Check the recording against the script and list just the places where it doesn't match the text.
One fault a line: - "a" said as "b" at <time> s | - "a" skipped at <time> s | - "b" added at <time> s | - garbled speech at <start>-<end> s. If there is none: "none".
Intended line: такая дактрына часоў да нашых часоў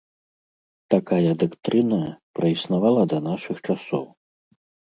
- "часоў" said as "праіснавала" at 2.4 s